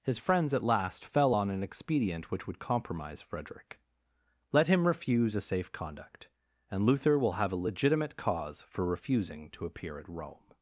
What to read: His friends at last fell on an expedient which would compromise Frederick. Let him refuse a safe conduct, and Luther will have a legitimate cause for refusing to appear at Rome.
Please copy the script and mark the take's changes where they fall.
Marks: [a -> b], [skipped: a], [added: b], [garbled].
His friends at last fell on an expedient which would compromise Frederick. Let him refuse a safe conduct, and Luther will have a legitimate cause for refusing to appear at Rome.